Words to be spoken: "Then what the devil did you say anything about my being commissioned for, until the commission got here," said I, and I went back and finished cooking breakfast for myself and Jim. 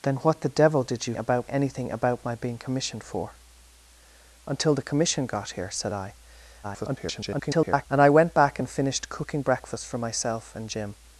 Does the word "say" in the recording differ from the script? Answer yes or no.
yes